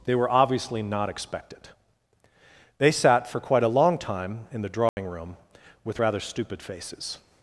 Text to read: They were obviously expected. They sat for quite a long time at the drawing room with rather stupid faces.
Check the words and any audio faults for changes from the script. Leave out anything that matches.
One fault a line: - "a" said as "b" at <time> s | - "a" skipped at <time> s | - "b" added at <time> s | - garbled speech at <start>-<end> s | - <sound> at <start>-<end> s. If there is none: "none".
- "not" added at 0.8 s
- "at" said as "in" at 4.5 s
- dropout at 4.9-5.0 s